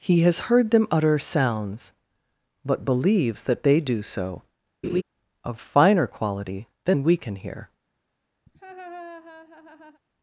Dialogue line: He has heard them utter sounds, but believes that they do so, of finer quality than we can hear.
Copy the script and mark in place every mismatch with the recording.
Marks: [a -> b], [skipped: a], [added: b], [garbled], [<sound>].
He has heard them utter sounds, but believes that they do so, [laugh] of finer quality than we can hear. [laugh]